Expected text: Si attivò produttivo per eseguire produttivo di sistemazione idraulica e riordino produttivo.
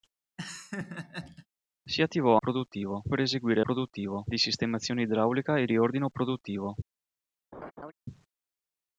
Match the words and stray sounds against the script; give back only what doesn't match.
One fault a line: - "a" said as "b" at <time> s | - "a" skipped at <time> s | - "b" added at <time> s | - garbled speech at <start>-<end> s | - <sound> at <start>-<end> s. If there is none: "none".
- laugh at 0.4-1.5 s
- laugh at 7.5-7.9 s